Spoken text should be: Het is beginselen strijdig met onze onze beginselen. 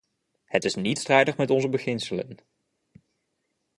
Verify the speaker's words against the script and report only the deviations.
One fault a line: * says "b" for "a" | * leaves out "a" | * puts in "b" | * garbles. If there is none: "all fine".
* says "niet" for "beginselen"
* leaves out "onze"